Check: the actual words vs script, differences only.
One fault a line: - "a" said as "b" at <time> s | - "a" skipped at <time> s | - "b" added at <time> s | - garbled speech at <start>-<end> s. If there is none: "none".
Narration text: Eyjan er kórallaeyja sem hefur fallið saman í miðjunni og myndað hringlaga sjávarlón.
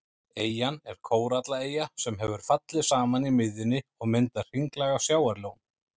none